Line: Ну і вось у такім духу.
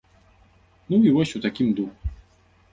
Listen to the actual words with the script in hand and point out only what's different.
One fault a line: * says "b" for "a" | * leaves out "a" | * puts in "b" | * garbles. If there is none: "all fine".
all fine